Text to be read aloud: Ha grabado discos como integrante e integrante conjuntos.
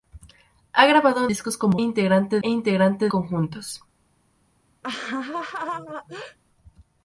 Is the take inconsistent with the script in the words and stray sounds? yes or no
yes